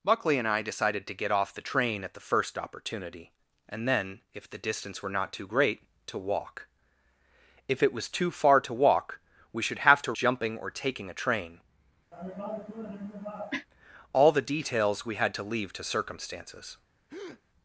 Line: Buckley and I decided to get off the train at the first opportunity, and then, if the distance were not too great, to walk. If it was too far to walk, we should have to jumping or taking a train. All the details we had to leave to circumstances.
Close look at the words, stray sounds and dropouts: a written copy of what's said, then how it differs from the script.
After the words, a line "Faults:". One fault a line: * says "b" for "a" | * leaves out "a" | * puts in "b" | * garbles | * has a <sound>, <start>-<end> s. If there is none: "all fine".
Buckley and I decided to get off the train at the first opportunity, and then, if the distance were not too great, to walk. If it was too far to walk, we should have to jumping or taking a train. All the details we had to leave to circumstances.
Faults:
* has a cough, 12.1-13.7 s
* has a breath, 17.1-17.4 s